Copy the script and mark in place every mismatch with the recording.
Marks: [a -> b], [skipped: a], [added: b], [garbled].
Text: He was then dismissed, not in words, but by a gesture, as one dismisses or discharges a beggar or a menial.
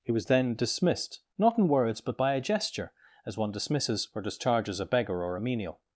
He was then dismissed, not in words, but by a gesture, as one dismisses or discharges a beggar or a menial.